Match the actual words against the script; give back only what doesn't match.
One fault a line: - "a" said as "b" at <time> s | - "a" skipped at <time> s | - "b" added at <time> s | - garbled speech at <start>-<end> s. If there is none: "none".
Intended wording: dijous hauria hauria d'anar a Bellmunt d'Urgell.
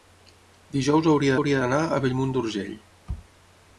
none